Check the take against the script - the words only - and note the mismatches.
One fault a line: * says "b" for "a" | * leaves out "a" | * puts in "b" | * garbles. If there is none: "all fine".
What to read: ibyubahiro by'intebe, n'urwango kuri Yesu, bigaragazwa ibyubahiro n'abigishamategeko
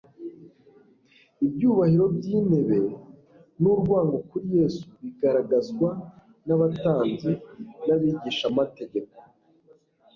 * says "n'abatambyi" for "ibyubahiro"